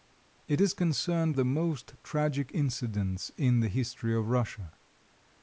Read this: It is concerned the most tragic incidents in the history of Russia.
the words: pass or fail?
pass